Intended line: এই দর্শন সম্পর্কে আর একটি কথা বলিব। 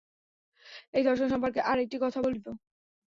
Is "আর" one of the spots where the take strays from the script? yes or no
no